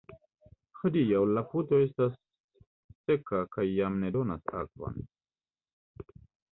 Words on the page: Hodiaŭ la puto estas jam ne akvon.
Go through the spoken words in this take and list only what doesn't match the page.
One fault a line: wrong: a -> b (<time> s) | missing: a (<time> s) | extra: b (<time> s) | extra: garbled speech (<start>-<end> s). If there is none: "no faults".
extra: seka kaj (3.1 s)
extra: donas (4.2 s)